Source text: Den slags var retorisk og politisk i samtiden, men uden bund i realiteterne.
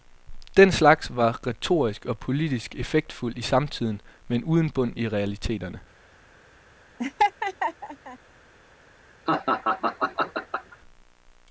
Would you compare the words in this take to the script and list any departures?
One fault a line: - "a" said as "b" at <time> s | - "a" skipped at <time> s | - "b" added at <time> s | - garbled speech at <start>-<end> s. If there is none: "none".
- "effektfuldt" added at 2.8 s